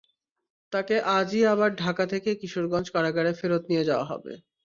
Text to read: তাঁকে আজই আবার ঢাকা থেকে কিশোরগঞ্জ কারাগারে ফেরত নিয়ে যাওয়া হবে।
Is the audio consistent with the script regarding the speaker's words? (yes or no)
yes